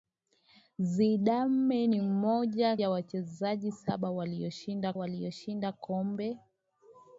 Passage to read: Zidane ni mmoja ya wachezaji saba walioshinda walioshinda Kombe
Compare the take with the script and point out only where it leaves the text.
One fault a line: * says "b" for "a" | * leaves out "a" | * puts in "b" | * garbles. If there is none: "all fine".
all fine